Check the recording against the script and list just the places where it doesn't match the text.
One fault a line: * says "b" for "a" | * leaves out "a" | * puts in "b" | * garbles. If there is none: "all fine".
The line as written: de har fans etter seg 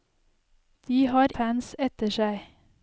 all fine